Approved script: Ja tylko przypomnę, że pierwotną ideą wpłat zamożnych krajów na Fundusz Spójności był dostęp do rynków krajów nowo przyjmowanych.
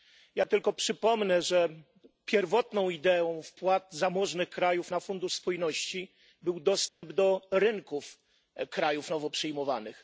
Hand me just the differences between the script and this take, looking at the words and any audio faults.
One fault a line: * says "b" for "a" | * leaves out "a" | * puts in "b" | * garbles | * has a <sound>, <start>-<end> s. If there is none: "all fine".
* has a dropout, 6.9-7.0 s